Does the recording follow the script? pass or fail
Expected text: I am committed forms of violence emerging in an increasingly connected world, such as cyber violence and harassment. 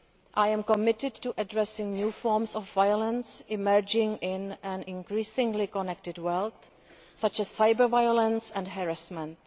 fail